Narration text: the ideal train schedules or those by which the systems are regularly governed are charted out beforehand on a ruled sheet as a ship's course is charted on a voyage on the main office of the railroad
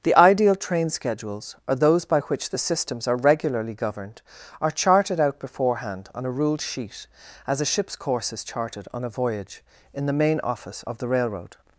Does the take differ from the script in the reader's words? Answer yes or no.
yes